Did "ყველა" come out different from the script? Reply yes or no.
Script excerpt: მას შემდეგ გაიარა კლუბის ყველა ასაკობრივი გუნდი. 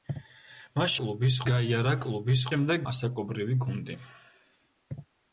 yes